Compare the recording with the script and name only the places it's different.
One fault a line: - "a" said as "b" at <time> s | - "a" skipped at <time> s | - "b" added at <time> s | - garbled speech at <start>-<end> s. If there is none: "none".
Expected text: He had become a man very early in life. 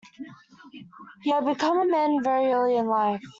none